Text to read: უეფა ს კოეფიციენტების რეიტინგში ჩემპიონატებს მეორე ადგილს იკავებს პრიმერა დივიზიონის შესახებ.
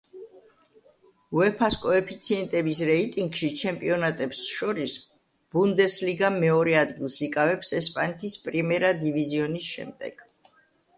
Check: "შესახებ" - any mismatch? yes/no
yes